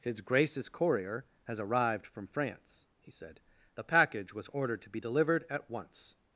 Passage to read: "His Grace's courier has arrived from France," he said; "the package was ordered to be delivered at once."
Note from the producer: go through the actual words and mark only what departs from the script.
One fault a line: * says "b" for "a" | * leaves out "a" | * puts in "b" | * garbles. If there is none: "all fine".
all fine